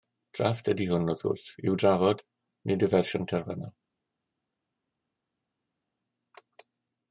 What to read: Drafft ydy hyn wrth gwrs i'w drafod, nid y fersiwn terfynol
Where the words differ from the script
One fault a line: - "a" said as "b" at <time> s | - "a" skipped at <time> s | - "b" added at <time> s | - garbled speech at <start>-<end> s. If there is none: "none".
- "hyn" said as "hwn" at 0.9 s